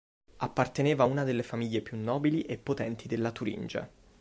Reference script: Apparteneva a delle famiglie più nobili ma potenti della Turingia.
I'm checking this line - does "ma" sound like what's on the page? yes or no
no